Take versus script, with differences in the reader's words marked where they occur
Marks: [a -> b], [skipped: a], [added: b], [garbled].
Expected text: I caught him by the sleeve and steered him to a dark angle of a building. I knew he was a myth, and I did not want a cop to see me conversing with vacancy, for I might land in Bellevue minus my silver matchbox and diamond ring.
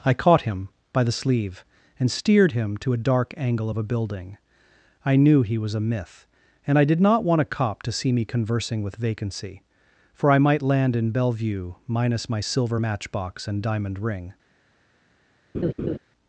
I caught him by the sleeve and steered him to a dark angle of a building. I knew he was a myth, and I did not want a cop to see me conversing with vacancy, for I might land in Bellevue minus my silver matchbox and diamond ring.